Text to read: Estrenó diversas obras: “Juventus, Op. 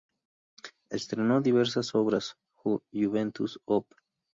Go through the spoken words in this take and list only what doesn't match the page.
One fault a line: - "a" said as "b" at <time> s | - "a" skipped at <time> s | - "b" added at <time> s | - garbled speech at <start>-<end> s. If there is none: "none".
none